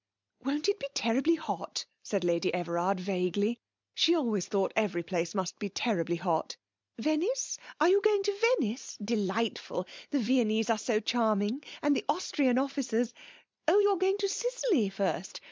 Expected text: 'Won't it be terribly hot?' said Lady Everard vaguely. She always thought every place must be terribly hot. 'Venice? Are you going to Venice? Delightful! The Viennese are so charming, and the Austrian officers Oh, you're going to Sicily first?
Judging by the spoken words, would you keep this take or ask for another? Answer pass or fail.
pass